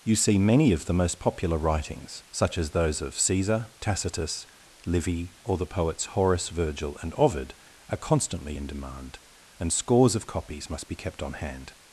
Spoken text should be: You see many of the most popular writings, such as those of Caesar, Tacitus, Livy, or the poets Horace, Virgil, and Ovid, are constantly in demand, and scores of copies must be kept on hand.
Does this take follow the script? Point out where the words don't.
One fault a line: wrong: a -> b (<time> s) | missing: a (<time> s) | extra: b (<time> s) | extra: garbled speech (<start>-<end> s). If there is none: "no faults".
no faults